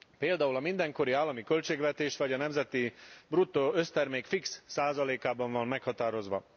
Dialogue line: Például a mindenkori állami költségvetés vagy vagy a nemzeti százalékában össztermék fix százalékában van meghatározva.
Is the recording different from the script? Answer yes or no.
yes